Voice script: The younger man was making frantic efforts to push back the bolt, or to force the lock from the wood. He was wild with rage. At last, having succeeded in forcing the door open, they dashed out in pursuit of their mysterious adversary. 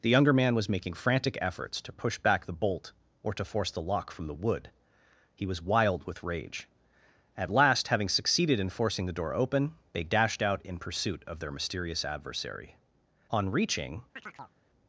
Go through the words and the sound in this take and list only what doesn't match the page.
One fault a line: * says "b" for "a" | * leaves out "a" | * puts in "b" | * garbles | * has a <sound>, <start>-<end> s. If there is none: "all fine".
* puts in "On reaching"
* has a chirp, 14.2-14.5 s